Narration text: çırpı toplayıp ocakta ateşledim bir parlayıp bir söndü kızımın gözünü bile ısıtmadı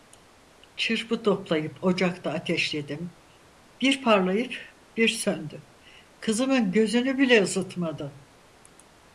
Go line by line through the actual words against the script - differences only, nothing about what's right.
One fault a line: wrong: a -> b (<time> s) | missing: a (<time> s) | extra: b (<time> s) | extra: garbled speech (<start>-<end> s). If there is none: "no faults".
no faults